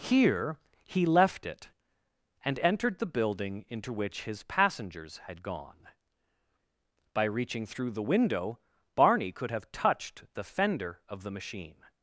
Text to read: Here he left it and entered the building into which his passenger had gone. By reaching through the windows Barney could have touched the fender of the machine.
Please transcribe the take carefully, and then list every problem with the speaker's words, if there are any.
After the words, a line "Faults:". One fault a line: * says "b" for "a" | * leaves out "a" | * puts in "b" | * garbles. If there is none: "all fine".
Here he left it and entered the building into which his passengers had gone. By reaching through the window Barney could have touched the fender of the machine.
Faults:
* says "passengers" for "passenger"
* says "window" for "windows"